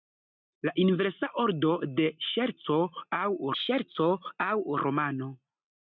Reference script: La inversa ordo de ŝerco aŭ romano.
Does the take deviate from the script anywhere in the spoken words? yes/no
yes